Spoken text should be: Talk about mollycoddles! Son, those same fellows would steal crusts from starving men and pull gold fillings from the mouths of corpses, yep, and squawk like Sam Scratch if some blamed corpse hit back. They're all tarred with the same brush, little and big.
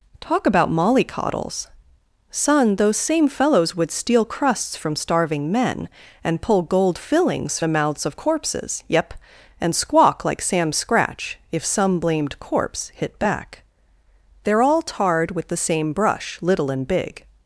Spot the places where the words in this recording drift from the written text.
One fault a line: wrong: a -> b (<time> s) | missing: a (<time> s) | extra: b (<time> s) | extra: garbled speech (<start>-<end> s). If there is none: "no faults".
missing: from (7.6 s)